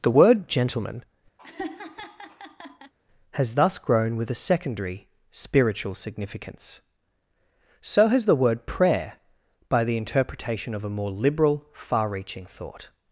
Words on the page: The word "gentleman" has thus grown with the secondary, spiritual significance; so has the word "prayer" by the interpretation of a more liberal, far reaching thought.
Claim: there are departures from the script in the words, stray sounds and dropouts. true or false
true